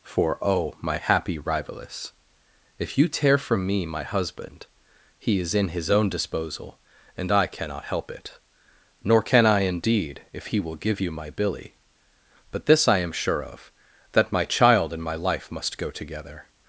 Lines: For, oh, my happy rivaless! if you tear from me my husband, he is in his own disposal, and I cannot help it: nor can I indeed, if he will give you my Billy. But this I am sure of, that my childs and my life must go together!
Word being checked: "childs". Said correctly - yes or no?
no